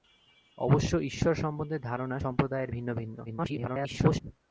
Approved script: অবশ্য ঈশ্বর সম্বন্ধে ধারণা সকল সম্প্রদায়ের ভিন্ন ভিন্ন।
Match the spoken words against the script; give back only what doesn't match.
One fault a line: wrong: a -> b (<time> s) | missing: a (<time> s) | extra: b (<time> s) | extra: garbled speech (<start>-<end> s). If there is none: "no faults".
missing: সকল (2.2 s)
extra: garbled speech (3.3-4.2 s)